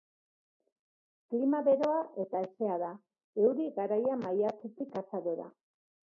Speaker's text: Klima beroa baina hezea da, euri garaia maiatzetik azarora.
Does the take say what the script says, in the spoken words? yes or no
no